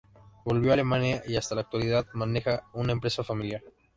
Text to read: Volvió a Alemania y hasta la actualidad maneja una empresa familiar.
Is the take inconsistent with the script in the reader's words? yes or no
no